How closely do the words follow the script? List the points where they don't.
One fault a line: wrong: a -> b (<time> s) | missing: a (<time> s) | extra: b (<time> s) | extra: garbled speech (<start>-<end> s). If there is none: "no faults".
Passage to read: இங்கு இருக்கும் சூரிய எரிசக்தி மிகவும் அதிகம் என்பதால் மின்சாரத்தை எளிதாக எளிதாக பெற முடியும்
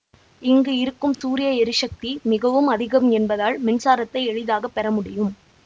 missing: எளிதாக (4.7 s)